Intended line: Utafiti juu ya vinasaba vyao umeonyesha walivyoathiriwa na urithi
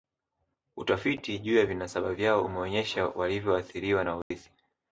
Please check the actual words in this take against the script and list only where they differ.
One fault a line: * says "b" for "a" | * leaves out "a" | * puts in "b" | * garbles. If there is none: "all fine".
all fine